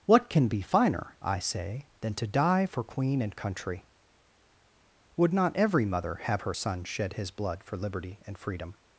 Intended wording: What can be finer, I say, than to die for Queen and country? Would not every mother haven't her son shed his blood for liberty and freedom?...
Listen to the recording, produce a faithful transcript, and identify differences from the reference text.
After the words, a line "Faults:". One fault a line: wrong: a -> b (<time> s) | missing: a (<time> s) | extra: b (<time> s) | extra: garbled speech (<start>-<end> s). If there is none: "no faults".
What can be finer, I say, than to die for Queen and country? Would not every mother have her son shed his blood for liberty and freedom?...
Faults:
wrong: haven't -> have (6.2 s)